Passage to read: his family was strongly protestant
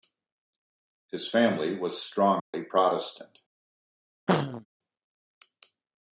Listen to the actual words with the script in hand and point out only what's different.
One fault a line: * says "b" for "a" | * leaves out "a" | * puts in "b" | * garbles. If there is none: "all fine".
all fine